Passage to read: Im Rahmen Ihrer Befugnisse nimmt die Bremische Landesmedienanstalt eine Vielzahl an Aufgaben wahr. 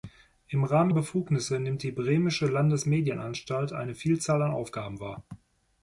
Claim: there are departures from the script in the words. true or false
true